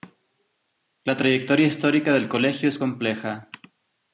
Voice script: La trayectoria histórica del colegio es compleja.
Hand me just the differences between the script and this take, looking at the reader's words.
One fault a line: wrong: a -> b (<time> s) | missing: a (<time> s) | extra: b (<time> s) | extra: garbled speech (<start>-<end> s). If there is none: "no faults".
no faults